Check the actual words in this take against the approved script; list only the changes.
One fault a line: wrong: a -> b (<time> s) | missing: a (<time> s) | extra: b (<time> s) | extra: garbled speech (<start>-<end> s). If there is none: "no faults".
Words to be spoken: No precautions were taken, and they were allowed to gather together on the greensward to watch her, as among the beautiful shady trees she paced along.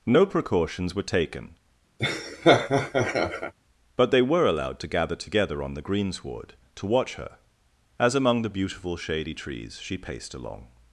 wrong: and -> but (4.0 s)